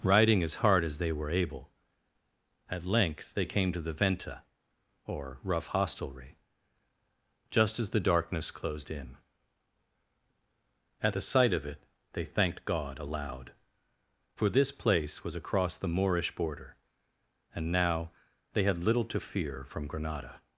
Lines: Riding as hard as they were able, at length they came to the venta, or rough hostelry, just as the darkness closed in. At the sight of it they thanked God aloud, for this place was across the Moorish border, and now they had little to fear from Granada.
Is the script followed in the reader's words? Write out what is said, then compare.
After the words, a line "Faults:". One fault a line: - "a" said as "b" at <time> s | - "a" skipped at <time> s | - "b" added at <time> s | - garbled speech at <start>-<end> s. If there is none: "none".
Riding as hard as they were able, at length they came to the venta, or rough hostelry, just as the darkness closed in. At the sight of it they thanked God aloud, for this place was across the Moorish border, and now they had little to fear from Granada.
Faults:
none